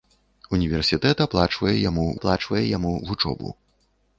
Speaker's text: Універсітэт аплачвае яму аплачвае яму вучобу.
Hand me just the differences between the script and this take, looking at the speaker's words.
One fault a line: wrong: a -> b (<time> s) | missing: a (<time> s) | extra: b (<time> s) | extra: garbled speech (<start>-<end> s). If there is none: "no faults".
no faults